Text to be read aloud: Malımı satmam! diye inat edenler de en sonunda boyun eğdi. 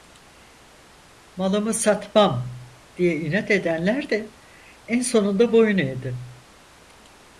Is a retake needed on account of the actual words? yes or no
no